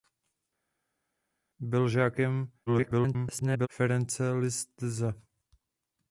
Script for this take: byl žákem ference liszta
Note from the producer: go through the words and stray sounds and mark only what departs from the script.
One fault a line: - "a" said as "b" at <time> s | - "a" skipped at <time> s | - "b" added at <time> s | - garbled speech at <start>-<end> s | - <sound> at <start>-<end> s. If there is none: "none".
- garbled speech at 2.7-3.7 s